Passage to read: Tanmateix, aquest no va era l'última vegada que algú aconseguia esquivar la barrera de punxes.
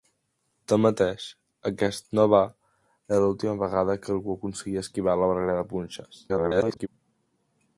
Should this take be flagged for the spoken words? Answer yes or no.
yes